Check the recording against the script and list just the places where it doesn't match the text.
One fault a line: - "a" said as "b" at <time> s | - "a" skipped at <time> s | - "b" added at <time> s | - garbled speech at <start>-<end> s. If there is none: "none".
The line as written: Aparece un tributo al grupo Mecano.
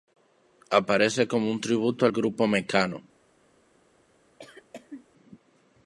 - "como" added at 1.3 s